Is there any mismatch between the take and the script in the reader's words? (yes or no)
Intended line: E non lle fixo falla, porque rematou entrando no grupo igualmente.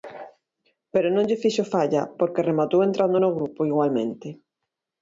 yes